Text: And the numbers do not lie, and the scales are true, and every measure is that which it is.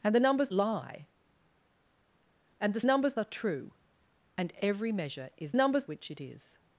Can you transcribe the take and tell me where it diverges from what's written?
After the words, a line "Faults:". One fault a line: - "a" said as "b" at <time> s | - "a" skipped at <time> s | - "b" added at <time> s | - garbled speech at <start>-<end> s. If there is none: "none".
And the numbers lie, and the numbers are true, and every measure is numbers which it is.
Faults:
- "do not" skipped at 0.5 s
- "scales" said as "numbers" at 2.8 s
- "that" said as "numbers" at 5.5 s